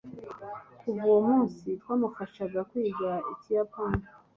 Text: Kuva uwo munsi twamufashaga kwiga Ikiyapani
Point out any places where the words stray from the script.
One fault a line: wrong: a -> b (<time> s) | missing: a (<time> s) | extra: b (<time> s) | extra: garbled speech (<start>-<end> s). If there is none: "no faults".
no faults